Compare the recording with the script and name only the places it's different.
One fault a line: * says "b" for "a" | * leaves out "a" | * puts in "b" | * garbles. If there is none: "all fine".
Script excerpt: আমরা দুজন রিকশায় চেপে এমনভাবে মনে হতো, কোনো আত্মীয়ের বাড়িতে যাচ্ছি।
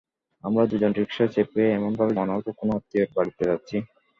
all fine